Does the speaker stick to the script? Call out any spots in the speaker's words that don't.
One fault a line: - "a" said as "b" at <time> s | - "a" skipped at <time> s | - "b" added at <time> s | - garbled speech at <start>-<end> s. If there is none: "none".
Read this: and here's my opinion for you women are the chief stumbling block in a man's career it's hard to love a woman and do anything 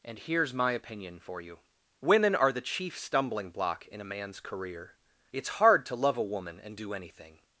none